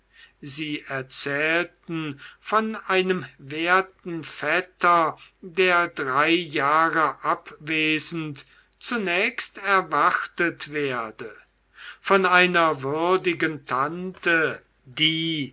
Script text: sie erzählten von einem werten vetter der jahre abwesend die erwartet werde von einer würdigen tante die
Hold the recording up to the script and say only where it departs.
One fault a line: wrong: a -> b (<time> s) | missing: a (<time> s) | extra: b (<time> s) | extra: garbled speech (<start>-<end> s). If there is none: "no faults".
extra: drei (5.9 s)
wrong: die -> zunächst (8.8 s)